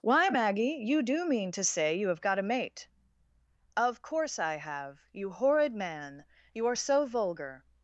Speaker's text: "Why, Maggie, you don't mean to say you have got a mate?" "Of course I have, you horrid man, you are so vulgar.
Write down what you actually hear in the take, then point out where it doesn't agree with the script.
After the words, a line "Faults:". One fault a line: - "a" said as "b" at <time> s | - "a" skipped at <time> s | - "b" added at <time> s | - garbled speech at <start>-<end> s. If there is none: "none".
"Why, Maggie, you do mean to say you have got a mate?" "Of course I have, you horrid man, you are so vulgar.
Faults:
- "don't" said as "do" at 1.0 s